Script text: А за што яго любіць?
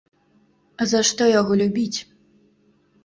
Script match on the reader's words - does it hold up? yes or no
yes